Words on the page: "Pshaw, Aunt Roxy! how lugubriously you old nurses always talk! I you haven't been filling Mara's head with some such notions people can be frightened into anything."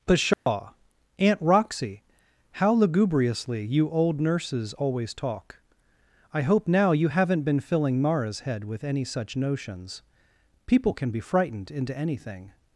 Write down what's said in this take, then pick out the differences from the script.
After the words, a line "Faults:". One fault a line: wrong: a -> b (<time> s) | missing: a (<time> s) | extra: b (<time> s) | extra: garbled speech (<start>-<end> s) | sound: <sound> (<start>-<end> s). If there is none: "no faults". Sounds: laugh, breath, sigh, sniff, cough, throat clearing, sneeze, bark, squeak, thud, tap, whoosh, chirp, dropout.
"Pshaw, Aunt Roxy! how lugubriously you old nurses always talk! I hope now you haven't been filling Mara's head with any such notions people can be frightened into anything."
Faults:
sound: dropout (0.3-0.5 s)
extra: hope now (6.4 s)
wrong: some -> any (8.8 s)